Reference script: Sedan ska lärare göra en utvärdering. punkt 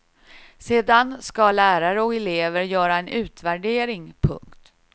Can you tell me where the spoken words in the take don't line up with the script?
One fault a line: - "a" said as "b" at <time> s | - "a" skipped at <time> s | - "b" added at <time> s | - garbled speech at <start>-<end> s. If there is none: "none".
- "och elever" added at 2.0 s